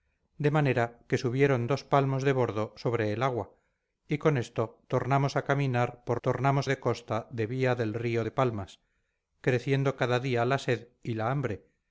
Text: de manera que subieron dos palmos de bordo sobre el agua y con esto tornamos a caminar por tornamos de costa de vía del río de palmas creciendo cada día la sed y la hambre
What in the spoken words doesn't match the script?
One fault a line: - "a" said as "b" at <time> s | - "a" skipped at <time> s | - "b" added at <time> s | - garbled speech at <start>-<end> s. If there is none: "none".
none